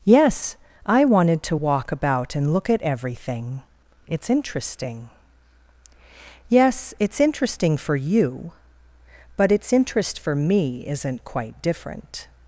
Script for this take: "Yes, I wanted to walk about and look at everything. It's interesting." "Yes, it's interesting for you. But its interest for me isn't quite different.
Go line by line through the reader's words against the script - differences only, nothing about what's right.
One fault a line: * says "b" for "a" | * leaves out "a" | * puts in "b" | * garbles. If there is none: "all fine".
all fine